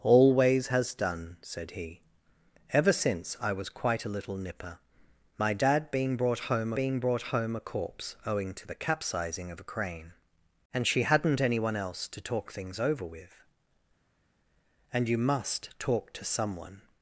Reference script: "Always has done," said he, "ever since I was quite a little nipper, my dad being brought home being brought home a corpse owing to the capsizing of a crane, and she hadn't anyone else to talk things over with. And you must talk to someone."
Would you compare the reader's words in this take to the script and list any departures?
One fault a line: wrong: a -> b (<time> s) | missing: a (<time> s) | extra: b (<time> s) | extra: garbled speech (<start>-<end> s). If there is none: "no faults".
no faults